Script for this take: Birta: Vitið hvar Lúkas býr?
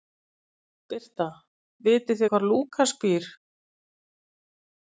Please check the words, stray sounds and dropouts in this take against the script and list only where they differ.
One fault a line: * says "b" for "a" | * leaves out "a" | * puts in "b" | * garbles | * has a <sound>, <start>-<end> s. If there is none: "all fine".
all fine